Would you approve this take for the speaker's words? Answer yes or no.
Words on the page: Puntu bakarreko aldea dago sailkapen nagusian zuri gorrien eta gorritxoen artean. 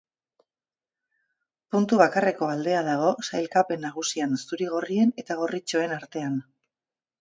yes